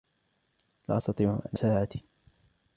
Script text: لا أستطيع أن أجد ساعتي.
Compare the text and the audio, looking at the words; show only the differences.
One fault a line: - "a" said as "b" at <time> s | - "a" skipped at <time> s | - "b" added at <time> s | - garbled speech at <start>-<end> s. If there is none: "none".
- "أجد" skipped at 1.6 s